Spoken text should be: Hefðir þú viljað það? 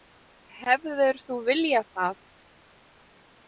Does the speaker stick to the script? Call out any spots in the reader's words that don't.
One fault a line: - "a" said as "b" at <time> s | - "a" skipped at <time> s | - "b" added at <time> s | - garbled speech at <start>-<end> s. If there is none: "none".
none